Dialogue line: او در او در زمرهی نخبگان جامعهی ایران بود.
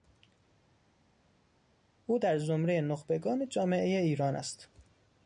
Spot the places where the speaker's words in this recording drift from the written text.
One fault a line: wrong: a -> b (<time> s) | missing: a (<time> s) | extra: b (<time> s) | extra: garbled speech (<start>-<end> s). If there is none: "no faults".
missing: او در (2.4 s)
wrong: بود -> است (4.3 s)